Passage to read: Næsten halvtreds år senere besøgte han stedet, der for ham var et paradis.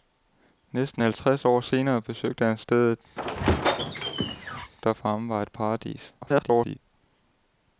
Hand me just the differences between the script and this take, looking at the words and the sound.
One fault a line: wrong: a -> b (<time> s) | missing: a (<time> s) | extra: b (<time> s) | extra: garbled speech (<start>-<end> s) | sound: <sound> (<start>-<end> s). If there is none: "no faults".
sound: squeak (3.2-4.7 s)
extra: garbled speech (6.2-6.8 s)